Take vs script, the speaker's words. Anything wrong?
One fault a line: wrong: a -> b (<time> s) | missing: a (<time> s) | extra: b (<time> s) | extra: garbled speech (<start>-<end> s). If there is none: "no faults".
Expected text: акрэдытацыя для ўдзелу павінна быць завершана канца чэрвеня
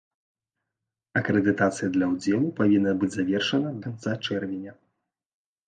no faults